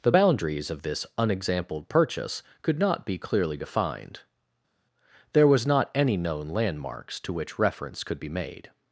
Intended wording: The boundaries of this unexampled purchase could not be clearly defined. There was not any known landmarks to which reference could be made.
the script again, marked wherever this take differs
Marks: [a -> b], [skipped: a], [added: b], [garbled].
The boundaries of this unexampled purchase could not be clearly defined. There was not any known landmarks to which reference could be made.